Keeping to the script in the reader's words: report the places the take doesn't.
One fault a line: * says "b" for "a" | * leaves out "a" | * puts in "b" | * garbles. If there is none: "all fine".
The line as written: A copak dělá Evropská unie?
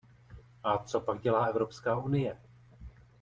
all fine